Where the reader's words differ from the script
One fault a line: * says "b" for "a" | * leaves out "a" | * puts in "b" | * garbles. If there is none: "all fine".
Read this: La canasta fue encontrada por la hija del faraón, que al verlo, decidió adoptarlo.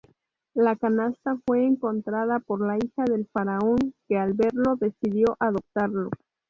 all fine